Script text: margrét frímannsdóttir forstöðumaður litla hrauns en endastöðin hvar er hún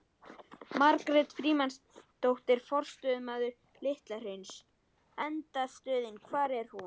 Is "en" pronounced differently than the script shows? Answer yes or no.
yes